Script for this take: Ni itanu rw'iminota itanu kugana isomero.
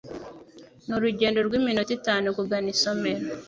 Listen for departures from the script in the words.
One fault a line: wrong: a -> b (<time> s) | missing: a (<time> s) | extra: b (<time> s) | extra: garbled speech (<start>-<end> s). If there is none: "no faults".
wrong: itanu -> urugendo (1.0 s)